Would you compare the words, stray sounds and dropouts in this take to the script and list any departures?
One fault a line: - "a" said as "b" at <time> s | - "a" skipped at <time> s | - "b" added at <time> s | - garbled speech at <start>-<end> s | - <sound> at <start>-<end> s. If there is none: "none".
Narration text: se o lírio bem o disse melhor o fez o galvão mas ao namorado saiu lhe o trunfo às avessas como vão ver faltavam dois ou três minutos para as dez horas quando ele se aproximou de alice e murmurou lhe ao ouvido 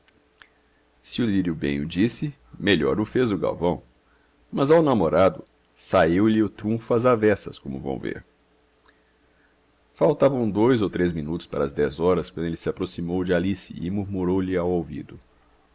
none